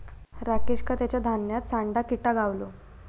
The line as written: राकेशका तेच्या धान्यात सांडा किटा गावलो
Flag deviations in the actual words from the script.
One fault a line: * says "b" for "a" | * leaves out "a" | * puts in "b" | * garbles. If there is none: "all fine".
all fine